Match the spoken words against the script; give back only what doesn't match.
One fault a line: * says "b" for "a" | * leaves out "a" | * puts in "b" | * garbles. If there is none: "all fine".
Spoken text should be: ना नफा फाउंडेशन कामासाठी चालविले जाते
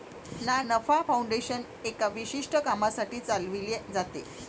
* puts in "एका विशिष्ट"